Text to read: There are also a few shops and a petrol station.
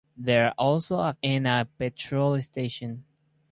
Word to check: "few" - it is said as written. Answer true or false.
false